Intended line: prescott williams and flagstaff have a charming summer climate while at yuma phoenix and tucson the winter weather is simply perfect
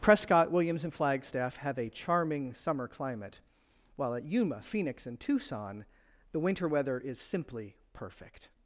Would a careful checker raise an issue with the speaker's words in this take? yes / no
no